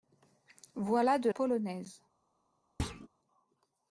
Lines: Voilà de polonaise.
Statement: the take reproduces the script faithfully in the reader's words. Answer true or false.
true